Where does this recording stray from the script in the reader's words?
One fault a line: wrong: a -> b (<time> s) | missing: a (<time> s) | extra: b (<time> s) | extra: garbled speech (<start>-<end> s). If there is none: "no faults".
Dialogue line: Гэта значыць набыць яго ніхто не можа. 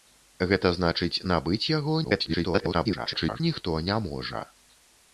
extra: garbled speech (2.0-3.4 s)